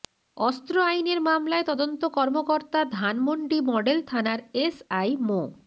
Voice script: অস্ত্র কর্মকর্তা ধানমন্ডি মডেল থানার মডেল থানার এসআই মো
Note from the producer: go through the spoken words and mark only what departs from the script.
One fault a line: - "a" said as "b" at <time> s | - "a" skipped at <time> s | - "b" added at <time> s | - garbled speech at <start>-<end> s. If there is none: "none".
- "আইনের মামলায় তদন্ত" added at 0.8 s
- "মডেল থানার" skipped at 4.4 s